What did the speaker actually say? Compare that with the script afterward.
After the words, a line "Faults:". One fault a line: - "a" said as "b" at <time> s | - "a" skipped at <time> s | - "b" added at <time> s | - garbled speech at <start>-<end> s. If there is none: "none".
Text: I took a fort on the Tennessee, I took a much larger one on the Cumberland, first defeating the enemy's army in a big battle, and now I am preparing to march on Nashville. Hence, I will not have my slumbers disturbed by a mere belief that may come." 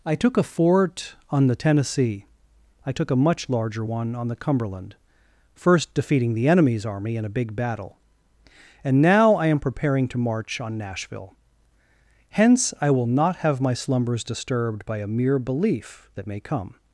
I took a fort on the Tennessee, I took a much larger one on the Cumberland, first defeating the enemy's army in a big battle, and now I am preparing to march on Nashville. Hence, I will not have my slumbers disturbed by a mere belief that may come."
Faults:
none